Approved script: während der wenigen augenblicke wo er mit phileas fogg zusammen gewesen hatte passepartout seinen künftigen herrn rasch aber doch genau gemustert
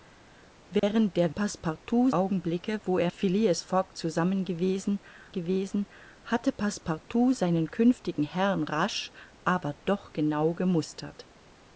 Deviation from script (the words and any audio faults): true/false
true